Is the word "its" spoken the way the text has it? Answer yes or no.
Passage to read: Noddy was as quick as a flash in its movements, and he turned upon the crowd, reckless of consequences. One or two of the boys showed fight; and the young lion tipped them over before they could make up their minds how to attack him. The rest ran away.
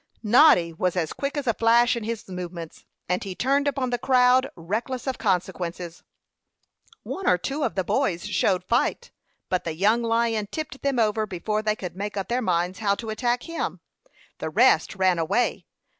no